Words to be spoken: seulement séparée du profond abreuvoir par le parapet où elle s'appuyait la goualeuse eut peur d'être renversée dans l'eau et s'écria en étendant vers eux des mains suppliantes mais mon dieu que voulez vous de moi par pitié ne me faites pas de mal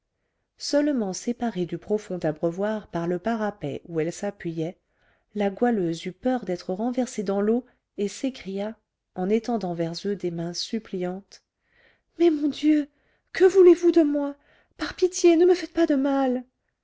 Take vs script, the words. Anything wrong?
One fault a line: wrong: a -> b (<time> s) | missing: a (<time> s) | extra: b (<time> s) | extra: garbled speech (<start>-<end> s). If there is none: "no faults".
no faults